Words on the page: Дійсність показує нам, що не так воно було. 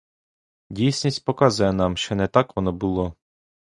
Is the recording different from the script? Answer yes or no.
no